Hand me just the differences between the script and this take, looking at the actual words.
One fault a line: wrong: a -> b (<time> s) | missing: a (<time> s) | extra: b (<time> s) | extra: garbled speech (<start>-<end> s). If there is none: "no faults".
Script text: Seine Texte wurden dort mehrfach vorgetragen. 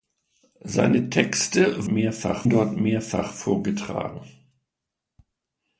wrong: wurden -> mehrfach (1.9 s)